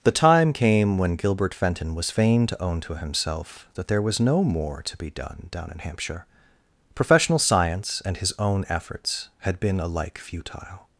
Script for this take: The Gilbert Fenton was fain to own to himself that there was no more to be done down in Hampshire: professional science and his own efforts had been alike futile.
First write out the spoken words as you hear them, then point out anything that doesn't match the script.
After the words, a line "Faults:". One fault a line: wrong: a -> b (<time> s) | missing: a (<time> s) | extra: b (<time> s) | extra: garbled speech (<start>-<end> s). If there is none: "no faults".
The time came when Gilbert Fenton was fain to own to himself that there was no more to be done down in Hampshire: professional science and his own efforts had been alike futile.
Faults:
extra: time came when (0.1 s)